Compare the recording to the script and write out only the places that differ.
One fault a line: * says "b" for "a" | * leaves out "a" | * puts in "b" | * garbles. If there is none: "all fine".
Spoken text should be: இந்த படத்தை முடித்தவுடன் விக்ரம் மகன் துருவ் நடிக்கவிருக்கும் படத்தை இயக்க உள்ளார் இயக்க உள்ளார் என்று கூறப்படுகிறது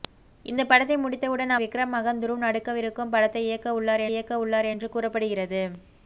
all fine